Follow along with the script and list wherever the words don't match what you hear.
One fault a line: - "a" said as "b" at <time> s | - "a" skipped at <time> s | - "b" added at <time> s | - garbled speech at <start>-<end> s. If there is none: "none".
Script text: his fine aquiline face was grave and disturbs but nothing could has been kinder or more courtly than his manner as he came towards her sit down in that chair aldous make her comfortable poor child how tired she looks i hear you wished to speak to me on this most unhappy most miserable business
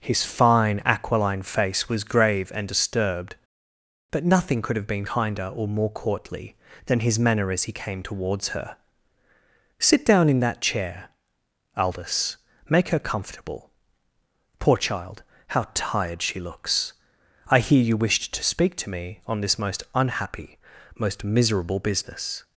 - "disturbs" said as "disturbed" at 2.7 s
- "has" said as "have" at 4.8 s